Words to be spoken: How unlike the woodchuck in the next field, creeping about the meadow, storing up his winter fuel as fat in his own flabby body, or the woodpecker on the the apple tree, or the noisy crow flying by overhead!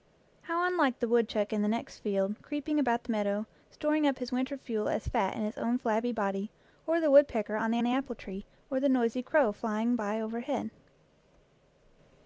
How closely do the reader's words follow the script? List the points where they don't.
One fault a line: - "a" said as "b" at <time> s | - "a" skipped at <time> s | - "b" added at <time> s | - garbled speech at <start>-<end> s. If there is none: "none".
none